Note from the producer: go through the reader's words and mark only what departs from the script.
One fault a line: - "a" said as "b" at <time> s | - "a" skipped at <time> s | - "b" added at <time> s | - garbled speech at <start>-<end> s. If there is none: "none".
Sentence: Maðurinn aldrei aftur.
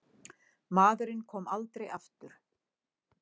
- "kom" added at 1.3 s